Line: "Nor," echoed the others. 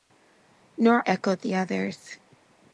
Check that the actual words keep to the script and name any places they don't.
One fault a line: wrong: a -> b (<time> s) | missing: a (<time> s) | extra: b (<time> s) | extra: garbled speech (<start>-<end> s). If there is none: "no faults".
no faults